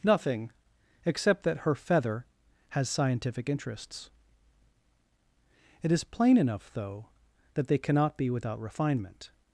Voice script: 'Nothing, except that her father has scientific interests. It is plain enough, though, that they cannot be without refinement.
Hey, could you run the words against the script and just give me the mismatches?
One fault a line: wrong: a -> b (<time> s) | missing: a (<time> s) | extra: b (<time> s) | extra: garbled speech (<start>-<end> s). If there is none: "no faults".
wrong: father -> feather (1.8 s)